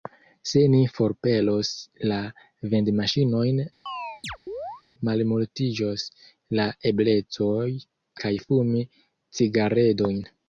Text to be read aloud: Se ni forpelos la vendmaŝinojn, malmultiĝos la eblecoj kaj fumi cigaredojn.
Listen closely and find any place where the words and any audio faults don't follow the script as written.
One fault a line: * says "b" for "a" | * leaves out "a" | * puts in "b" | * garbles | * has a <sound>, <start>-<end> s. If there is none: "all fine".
* has a chirp, 3.9-4.8 s